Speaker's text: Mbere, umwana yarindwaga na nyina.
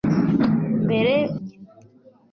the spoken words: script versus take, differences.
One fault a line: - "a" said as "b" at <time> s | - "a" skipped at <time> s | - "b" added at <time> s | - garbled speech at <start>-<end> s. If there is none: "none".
- "umwana yarindwaga na" skipped at 1.1 s